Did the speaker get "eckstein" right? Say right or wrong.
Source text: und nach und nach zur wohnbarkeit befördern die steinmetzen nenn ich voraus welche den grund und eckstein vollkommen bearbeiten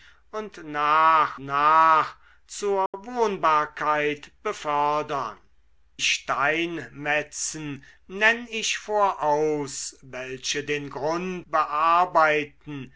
wrong